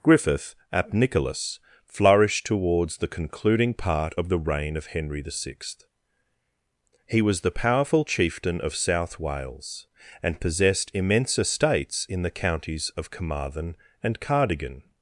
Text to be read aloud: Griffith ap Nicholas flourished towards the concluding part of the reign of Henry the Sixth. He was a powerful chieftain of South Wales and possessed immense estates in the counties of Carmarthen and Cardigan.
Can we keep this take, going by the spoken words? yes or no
no